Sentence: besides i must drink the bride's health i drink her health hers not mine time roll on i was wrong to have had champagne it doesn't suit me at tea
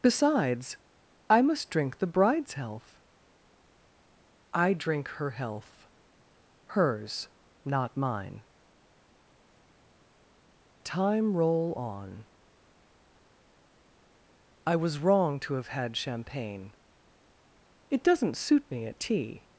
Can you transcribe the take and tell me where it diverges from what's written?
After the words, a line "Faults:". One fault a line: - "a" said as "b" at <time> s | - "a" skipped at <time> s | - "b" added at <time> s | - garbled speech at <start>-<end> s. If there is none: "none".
besides i must drink the bride's health i drink her health hers not mine time roll on i was wrong to have had champagne it doesn't suit me at tea
Faults:
none